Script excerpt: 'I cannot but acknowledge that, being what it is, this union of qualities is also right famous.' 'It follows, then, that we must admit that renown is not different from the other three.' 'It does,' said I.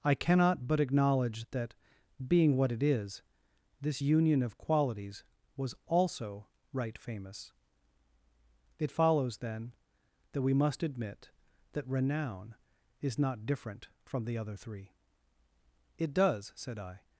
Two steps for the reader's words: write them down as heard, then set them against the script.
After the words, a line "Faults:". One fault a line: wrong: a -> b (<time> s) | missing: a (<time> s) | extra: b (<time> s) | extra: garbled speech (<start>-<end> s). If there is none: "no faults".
'I cannot but acknowledge that, being what it is, this union of qualities was also right famous.' 'It follows, then, that we must admit that renown is not different from the other three.' 'It does,' said I.
Faults:
wrong: is -> was (5.6 s)